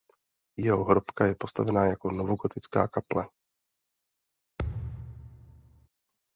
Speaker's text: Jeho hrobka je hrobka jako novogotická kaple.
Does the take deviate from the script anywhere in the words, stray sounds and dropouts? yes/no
yes